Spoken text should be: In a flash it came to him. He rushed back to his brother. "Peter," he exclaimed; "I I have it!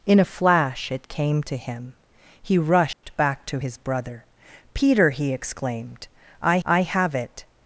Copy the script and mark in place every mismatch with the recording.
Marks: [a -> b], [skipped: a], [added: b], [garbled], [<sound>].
In a flash it came to him. He rushed [dropout] back to his brother. "Peter," he exclaimed; "I I have it!